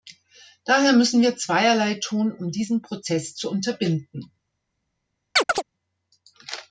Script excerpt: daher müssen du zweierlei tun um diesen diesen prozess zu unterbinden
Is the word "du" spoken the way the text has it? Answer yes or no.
no